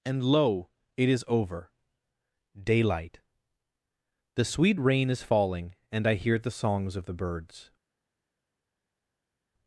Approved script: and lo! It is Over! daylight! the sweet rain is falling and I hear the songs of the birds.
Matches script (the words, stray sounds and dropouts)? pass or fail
pass